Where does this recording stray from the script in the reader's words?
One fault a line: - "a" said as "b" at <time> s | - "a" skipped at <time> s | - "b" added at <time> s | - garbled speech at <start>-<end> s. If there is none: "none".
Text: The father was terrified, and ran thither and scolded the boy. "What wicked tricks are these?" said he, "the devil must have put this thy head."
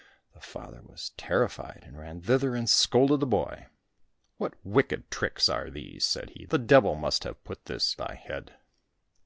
none